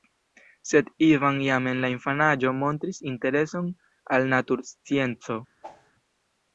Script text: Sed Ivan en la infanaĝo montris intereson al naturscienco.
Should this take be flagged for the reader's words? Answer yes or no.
yes